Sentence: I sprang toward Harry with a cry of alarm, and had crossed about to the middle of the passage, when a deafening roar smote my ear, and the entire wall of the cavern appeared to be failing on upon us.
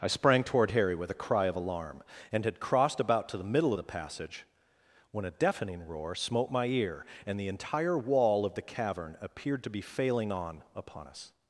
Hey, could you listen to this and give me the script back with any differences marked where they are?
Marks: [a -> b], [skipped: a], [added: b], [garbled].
I sprang toward Harry with a cry of alarm, and had crossed about to the middle of the passage, when a deafening roar smote my ear, and the entire wall of the cavern appeared to be failing on upon us.